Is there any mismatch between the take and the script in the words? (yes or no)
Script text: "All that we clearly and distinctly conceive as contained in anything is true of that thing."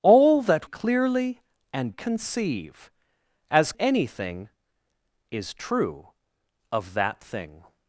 yes